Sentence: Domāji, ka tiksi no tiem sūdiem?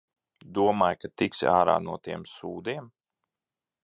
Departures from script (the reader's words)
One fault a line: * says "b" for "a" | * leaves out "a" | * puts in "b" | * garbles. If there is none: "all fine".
* puts in "ārā"